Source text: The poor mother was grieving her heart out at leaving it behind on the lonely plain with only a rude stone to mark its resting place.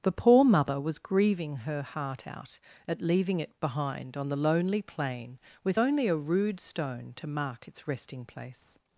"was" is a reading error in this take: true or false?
false